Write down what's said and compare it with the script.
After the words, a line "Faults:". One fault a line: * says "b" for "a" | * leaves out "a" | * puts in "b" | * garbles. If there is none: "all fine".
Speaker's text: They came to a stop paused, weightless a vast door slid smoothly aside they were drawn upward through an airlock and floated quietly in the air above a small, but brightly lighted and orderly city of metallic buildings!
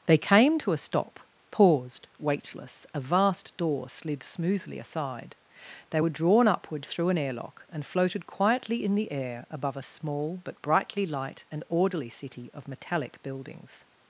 They came to a stop paused, weightless a vast door slid smoothly aside they were drawn upward through an airlock and floated quietly in the air above a small, but brightly light and orderly city of metallic buildings!
Faults:
* says "light" for "lighted"